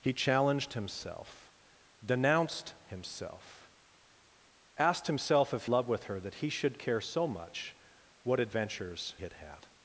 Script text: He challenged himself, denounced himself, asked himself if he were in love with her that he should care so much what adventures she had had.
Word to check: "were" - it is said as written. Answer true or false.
false